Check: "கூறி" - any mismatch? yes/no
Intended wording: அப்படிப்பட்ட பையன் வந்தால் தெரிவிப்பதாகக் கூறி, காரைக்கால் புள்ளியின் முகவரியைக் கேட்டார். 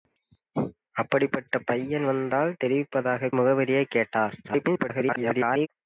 yes